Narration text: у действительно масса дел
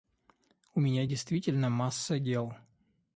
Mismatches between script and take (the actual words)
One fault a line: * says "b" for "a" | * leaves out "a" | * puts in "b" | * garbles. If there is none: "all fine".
* puts in "меня"